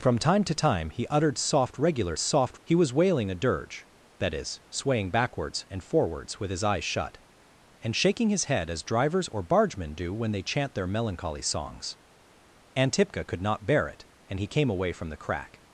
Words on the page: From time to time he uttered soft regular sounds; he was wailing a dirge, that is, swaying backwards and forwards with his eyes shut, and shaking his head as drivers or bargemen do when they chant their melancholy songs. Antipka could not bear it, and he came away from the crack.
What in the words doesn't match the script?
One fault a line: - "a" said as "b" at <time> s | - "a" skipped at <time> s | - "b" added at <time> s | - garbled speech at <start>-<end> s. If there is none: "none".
- "sounds" said as "soft" at 2.2 s